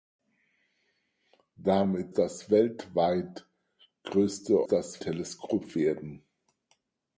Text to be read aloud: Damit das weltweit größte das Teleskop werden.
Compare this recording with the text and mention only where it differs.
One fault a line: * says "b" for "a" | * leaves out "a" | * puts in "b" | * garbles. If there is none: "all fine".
all fine